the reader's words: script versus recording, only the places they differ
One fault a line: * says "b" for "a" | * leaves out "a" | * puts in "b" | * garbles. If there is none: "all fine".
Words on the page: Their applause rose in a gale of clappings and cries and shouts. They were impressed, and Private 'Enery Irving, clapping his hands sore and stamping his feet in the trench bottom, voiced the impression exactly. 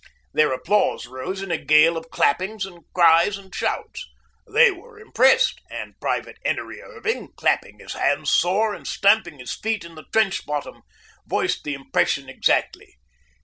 all fine